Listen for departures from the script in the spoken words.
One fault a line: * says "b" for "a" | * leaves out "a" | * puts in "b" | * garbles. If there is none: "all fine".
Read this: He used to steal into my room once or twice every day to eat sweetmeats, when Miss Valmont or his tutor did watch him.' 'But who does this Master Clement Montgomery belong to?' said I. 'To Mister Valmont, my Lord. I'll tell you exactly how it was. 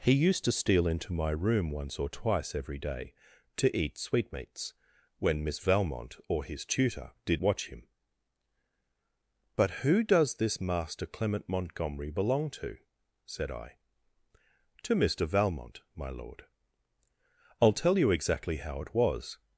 all fine